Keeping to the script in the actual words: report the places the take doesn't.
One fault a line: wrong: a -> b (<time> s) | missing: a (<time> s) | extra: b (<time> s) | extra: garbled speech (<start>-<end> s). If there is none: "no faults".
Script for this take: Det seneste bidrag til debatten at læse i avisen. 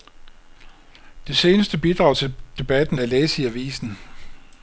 no faults